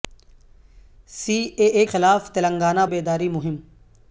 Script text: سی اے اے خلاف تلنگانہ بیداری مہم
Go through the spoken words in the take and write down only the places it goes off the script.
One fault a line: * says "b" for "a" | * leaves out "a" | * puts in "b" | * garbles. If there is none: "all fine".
all fine